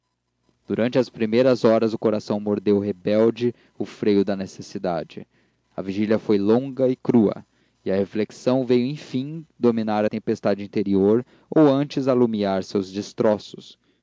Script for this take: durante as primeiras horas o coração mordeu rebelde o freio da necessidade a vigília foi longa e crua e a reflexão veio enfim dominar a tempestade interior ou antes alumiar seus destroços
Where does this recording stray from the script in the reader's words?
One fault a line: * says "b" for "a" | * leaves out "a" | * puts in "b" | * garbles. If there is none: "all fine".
all fine